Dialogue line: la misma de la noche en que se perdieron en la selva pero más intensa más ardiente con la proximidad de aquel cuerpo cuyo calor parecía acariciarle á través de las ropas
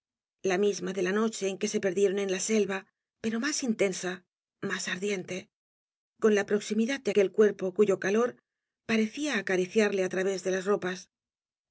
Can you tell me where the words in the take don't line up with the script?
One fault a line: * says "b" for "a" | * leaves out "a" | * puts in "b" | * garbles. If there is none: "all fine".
all fine